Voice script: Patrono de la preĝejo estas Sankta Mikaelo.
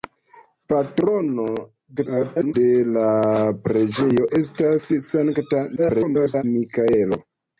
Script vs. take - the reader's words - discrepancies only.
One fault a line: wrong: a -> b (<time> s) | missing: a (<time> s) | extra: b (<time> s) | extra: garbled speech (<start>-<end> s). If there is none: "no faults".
extra: garbled speech (2.0-2.5 s)
extra: garbled speech (5.8-6.4 s)